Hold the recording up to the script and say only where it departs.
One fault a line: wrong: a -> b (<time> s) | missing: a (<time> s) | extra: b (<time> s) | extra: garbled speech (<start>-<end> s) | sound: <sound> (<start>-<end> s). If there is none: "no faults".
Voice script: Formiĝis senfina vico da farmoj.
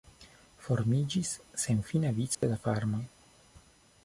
sound: dropout (2.3-2.4 s)